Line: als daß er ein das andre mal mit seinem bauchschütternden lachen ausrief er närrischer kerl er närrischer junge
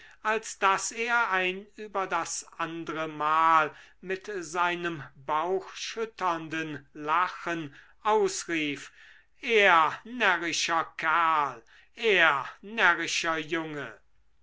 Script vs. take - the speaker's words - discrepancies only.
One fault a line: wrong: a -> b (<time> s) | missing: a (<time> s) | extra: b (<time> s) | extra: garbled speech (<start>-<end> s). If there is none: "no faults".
extra: über (1.8 s)